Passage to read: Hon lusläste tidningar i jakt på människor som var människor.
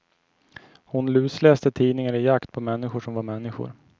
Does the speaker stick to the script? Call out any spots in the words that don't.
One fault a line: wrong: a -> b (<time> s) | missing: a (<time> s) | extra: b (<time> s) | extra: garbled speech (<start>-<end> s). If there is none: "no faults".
no faults